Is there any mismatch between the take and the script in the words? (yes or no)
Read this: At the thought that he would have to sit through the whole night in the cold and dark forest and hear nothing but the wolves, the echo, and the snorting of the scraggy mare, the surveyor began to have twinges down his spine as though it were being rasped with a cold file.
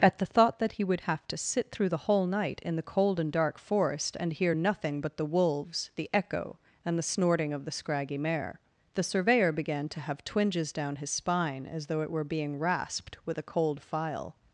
no